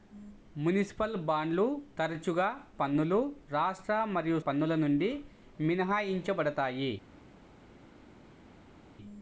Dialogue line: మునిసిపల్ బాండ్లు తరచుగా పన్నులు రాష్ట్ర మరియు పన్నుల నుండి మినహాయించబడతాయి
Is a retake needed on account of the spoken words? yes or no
no